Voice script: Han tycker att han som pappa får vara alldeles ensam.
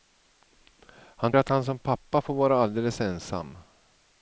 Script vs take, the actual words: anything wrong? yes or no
yes